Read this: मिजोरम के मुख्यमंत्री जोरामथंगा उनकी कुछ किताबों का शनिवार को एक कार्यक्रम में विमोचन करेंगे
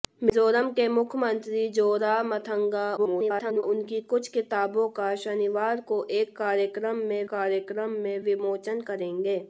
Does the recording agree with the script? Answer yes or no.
no